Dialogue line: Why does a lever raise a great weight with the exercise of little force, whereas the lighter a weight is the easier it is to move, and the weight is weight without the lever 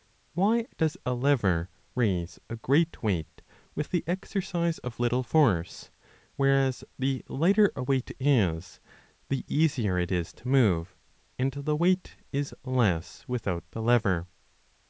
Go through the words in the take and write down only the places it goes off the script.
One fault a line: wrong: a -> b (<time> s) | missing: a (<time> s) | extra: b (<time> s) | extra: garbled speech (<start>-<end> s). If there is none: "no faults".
wrong: weight -> less (12.6 s)